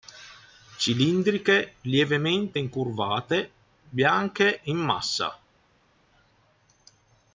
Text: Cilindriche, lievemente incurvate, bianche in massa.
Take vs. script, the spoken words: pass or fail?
pass